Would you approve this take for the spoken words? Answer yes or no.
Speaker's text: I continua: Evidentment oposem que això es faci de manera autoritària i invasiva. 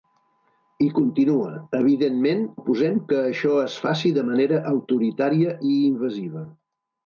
yes